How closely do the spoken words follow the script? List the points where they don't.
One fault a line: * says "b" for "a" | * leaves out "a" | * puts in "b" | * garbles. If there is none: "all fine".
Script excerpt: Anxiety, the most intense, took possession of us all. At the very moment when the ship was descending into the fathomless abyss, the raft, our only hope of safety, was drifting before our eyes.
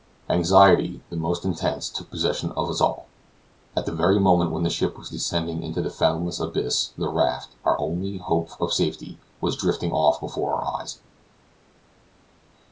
* puts in "off"